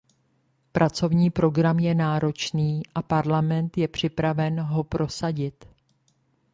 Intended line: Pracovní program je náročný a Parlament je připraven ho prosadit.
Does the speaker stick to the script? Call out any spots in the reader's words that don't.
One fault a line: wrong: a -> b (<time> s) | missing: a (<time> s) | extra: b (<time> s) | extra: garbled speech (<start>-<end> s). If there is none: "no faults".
no faults